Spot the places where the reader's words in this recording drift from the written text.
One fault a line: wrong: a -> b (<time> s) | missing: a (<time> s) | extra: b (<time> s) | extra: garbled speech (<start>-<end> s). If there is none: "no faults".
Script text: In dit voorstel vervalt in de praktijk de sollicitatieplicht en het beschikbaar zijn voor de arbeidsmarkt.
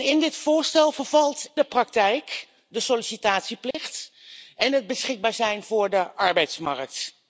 missing: in (1.5 s)